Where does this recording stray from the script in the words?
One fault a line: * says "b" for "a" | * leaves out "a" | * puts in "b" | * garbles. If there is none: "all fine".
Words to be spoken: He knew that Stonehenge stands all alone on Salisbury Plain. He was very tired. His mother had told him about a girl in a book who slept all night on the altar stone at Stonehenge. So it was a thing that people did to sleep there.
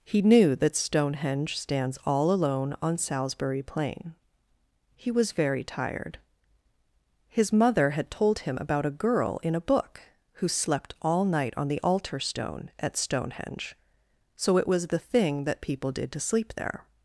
* says "the" for "a"